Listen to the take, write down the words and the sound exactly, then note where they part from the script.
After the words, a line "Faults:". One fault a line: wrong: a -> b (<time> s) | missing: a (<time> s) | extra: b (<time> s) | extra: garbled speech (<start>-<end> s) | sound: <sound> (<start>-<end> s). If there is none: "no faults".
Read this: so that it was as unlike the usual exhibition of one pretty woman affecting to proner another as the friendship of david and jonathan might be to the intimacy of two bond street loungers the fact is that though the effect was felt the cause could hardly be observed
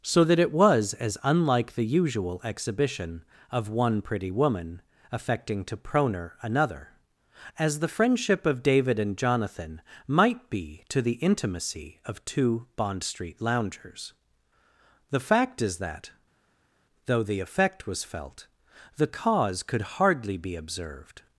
so that it was as unlike the usual exhibition of one pretty woman affecting to proner another as the friendship of david and jonathan might be to the intimacy of two bond street loungers the fact is that though the effect was felt the cause could hardly be observed
Faults:
no faults